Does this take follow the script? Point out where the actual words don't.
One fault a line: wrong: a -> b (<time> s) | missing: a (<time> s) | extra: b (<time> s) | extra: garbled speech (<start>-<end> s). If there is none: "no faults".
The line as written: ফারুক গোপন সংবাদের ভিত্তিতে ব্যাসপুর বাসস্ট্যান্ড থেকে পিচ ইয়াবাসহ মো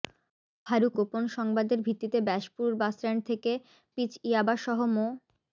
no faults